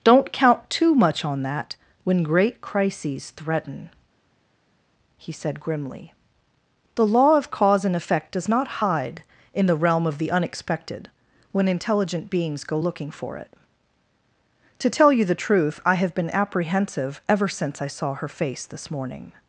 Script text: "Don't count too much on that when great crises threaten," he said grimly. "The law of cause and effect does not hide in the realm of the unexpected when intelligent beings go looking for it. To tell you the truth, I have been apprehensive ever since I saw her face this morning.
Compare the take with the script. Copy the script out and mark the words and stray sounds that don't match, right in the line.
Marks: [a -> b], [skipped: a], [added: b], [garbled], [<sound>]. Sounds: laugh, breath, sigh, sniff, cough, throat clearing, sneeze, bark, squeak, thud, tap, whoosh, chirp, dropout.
"Don't count too much on that when great crises threaten," he said grimly. "The law of cause and effect does not hide in the realm of the unexpected when intelligent beings go looking for it. To tell you the truth, I have been apprehensive ever since I saw her face this morning.